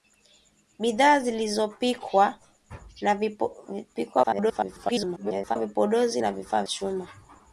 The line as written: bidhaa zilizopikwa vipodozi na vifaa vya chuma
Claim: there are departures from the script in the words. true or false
true